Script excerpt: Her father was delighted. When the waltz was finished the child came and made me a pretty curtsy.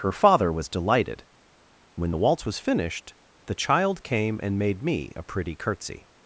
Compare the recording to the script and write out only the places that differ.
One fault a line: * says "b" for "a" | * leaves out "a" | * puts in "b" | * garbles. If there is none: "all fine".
all fine